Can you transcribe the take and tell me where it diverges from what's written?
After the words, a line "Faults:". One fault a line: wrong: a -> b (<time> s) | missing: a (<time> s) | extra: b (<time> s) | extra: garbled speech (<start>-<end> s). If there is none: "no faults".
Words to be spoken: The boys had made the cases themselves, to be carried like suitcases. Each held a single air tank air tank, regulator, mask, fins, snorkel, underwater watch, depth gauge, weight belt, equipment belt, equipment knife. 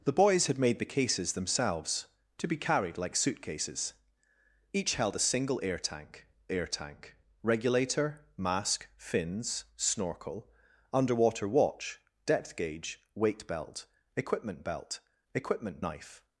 The boys had made the cases themselves, to be carried like suitcases. Each held a single air tank air tank, regulator, mask, fins, snorkel, underwater watch, depth gauge, weight belt, equipment belt, equipment knife.
Faults:
no faults